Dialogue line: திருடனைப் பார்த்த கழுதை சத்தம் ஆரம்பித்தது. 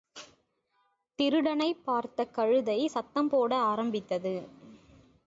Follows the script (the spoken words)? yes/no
no